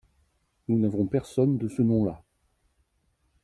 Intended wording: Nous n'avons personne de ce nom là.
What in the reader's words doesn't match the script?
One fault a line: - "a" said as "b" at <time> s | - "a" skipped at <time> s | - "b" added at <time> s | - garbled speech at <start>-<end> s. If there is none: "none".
none